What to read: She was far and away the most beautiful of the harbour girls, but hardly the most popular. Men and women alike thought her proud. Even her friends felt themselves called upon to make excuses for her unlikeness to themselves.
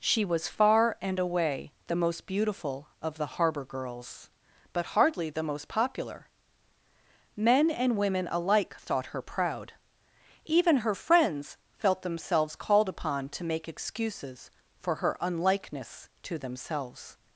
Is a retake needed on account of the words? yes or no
no